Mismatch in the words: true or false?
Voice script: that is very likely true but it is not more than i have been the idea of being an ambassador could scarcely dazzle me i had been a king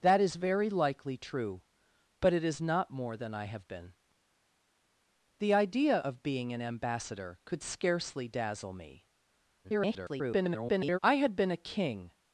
true